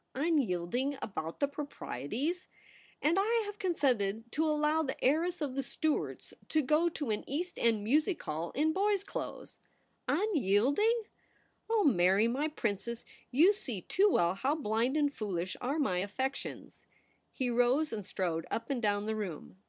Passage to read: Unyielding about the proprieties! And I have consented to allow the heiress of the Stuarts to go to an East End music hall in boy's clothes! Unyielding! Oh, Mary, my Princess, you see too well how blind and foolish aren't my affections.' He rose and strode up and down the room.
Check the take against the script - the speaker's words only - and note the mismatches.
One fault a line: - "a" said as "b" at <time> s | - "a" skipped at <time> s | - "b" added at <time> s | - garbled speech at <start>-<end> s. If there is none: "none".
- "aren't" said as "are" at 15.6 s